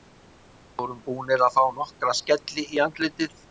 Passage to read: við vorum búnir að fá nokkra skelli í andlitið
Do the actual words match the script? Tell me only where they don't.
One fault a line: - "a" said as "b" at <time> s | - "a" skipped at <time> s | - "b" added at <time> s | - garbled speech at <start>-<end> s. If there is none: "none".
none